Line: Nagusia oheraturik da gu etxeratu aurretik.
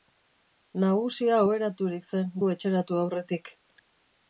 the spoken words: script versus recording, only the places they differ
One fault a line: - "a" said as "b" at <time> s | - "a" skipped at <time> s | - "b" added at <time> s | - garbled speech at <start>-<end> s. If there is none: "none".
- "da" said as "zen" at 2.1 s